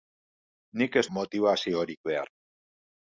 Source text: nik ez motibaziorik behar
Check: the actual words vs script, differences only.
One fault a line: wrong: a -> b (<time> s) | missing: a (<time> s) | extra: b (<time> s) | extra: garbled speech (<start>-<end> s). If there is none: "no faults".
no faults